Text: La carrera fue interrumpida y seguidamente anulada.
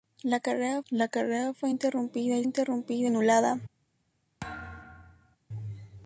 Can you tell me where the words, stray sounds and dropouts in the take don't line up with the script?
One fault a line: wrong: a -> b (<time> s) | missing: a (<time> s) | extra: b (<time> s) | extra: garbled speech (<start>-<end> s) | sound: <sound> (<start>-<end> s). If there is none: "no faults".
extra: la carrera (0.9 s)
wrong: seguidamente -> interrumpida (2.4 s)
sound: thud (4.4-5.4 s)